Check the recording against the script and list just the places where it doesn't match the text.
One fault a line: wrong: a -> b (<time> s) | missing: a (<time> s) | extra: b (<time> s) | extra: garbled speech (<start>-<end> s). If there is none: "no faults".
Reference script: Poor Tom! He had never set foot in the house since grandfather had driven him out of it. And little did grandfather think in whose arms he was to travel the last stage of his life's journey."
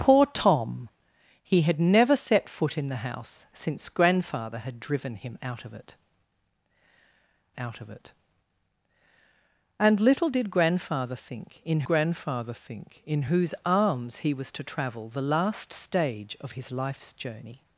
extra: out of it (7.6 s)
extra: grandfather think in (11.8 s)